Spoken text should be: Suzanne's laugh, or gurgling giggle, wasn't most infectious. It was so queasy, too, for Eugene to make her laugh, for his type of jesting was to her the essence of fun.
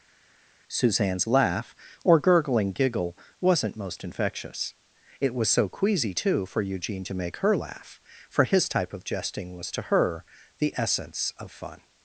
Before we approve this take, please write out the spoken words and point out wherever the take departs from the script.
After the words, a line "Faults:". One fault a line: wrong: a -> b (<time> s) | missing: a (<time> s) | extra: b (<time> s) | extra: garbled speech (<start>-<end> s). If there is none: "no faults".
Suzanne's laugh, or gurgling giggle, wasn't most infectious. It was so queasy, too, for Eugene to make her laugh, for his type of jesting was to her the essence of fun.
Faults:
no faults